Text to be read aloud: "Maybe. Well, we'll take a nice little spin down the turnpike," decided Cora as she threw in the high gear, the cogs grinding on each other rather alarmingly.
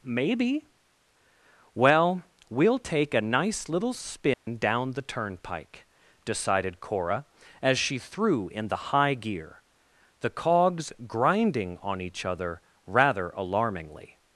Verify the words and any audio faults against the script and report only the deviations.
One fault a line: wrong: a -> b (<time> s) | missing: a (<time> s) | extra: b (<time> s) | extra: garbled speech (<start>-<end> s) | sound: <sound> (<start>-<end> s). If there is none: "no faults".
sound: dropout (4.3-4.5 s)